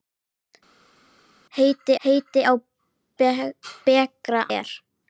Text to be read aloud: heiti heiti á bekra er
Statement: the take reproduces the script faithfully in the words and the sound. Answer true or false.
true